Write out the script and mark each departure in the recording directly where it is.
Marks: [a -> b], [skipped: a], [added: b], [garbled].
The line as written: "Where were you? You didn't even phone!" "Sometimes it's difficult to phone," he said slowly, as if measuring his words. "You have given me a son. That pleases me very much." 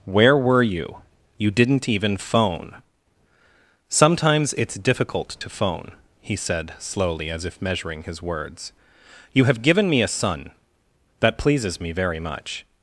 "Where were you? You didn't even phone!" "Sometimes it's difficult to phone," he said slowly, as if measuring his words. "You have given me a son. That pleases me very much."